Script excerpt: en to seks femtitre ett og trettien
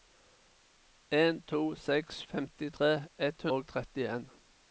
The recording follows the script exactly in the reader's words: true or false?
true